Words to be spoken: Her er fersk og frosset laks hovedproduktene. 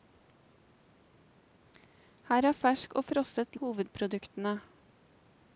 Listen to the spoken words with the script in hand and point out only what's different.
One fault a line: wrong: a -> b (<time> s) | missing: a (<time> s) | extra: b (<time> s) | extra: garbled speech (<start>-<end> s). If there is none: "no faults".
missing: laks (3.5 s)